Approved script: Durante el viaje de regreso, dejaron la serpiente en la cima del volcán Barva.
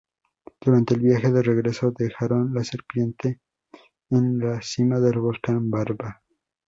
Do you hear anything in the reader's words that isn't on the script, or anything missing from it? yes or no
no